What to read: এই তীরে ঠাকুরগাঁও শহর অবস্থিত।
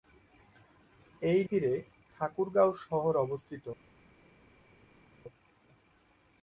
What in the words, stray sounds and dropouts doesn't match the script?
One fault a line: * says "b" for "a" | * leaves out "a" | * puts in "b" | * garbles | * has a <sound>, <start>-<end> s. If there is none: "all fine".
all fine